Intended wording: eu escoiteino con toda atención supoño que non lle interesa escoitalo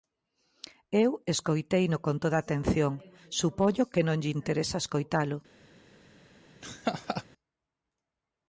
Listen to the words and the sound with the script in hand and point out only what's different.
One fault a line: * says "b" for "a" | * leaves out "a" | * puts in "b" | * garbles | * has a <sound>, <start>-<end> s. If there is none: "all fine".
* has a laugh, 6.6-7.2 s